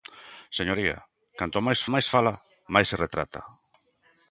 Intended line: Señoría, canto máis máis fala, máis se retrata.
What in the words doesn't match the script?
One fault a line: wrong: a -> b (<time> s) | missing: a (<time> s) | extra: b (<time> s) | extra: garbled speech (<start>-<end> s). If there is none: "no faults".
no faults